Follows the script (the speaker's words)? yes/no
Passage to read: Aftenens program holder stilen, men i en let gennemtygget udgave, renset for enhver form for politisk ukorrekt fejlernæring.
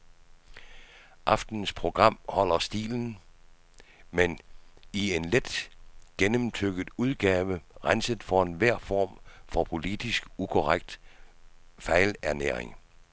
yes